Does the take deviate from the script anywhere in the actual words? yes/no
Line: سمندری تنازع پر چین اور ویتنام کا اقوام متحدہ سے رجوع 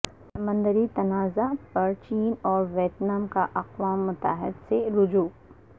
no